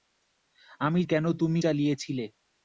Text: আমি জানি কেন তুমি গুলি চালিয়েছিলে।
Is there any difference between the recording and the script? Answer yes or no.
yes